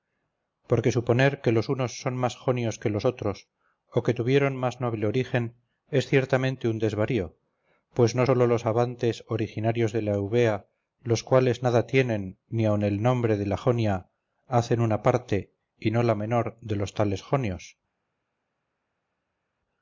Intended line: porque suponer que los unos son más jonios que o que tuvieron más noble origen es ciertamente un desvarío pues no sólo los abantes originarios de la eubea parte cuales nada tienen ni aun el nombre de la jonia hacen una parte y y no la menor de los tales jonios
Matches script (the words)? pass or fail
fail